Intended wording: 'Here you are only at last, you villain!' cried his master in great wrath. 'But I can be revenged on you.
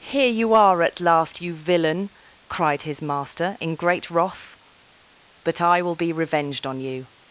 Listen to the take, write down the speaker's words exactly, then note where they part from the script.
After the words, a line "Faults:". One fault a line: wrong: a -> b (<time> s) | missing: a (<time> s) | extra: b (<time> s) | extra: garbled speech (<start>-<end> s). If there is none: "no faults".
'Here you are at last, you villain!' cried his master in great wrath. 'But I will be revenged on you.
Faults:
missing: only (0.8 s)
wrong: can -> will (5.8 s)